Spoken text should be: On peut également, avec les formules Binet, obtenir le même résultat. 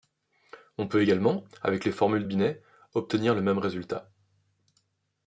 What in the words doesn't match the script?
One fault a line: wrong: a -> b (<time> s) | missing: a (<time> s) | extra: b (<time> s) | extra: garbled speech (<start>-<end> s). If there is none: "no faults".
no faults